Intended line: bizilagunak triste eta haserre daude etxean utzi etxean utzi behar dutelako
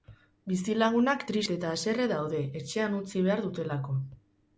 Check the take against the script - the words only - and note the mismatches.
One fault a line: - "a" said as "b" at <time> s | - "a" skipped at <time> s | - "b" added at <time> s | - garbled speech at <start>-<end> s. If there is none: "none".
- "etxean utzi" skipped at 3.2 s